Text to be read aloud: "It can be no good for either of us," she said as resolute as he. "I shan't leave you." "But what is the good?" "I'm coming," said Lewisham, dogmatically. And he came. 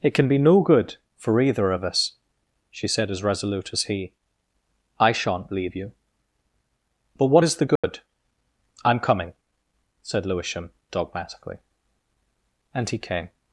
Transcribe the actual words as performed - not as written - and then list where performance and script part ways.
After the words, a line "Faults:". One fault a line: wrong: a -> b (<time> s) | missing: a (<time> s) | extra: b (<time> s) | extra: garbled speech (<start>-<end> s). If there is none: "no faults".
"It can be no good for either of us," she said as resolute as he. "I shan't leave you." "But what is the good?" "I'm coming," said Lewisham, dogmatically. And he came.
Faults:
no faults